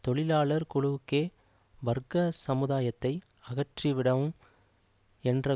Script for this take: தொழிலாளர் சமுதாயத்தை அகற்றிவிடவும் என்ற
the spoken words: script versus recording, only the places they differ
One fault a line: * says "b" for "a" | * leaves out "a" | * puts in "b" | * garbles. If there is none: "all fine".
* puts in "குழுக்களுக்கே வர்க்க"